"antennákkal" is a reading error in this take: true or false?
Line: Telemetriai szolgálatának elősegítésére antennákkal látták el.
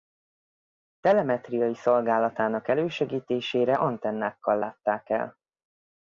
false